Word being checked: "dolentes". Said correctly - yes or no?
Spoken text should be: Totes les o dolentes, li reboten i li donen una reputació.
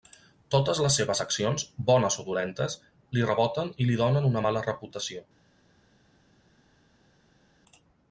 yes